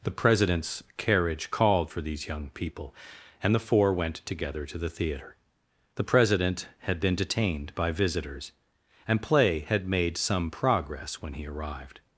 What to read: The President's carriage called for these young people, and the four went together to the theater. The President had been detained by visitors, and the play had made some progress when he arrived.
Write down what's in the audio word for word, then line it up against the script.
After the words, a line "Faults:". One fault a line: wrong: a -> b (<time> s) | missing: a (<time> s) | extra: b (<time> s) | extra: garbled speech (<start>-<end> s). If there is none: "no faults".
The President's carriage called for these young people, and the four went together to the theater. The President had been detained by visitors, and play had made some progress when he arrived.
Faults:
missing: the (9.2 s)